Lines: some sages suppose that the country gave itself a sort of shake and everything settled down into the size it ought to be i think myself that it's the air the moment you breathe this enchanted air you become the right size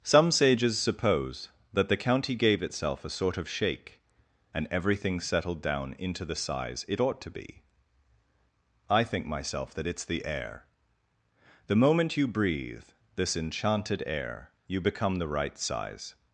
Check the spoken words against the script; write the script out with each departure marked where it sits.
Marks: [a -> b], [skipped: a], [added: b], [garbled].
some sages suppose that the [country -> county] gave itself a sort of shake and everything settled down into the size it ought to be i think myself that it's the air the moment you breathe this enchanted air you become the right size